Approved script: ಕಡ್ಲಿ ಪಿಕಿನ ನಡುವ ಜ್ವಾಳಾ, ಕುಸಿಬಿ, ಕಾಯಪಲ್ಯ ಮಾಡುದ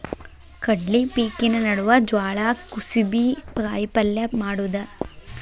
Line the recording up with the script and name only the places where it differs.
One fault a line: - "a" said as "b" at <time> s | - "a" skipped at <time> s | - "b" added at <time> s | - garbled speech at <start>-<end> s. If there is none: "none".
none